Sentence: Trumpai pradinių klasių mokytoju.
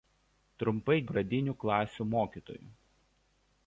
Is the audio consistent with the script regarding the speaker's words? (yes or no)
yes